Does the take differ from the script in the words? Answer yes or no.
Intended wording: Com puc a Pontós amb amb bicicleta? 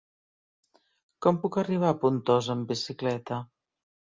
yes